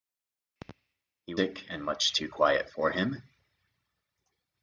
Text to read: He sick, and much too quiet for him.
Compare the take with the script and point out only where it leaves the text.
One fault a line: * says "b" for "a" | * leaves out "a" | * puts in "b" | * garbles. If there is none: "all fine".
all fine